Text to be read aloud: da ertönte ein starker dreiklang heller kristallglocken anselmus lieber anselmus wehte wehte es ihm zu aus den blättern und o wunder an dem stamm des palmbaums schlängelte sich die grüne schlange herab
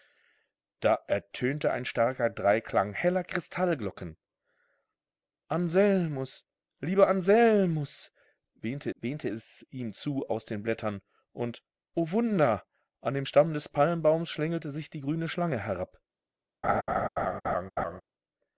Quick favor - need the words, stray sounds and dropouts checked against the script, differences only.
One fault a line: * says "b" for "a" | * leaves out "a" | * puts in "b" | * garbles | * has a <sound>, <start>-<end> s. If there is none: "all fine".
* has a laugh, 16.6-18.0 s